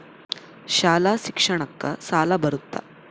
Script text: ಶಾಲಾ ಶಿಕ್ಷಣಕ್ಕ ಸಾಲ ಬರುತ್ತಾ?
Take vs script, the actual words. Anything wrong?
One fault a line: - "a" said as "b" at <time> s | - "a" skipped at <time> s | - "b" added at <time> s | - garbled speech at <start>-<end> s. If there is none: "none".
none